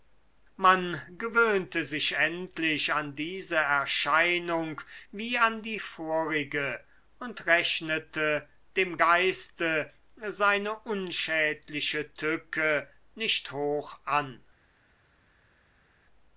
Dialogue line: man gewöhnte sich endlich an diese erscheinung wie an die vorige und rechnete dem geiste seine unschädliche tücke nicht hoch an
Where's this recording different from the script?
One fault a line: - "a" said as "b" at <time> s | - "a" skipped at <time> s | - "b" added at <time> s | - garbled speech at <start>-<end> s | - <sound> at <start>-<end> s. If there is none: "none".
none